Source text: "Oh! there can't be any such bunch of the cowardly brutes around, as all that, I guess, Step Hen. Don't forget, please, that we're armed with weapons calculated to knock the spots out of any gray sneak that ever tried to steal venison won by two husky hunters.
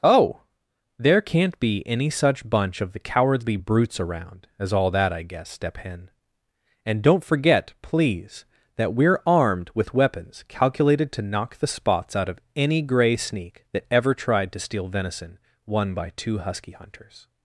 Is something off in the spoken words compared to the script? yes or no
yes